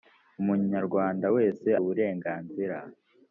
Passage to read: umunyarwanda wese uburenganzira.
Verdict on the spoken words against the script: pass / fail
pass